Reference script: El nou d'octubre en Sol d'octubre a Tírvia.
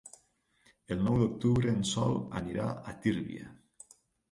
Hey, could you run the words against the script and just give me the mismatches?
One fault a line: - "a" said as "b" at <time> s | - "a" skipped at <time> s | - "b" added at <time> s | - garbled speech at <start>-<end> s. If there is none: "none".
- "d'octubre" said as "anirà" at 2.4 s